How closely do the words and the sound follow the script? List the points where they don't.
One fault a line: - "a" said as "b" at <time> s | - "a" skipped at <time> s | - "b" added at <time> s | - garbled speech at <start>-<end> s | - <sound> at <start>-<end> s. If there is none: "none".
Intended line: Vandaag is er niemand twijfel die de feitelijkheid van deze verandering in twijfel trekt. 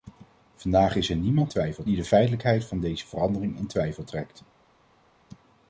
none